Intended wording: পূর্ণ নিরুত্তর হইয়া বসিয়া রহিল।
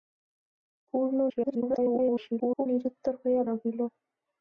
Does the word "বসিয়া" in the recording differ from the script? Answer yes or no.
yes